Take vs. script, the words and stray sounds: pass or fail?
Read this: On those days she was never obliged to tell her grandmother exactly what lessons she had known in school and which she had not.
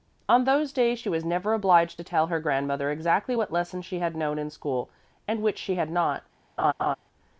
fail